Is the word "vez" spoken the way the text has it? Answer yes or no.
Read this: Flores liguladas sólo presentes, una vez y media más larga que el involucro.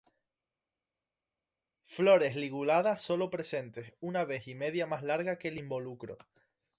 yes